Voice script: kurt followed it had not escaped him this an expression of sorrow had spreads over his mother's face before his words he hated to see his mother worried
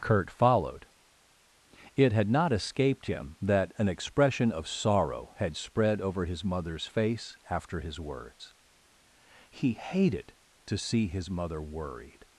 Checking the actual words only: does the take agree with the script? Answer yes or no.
no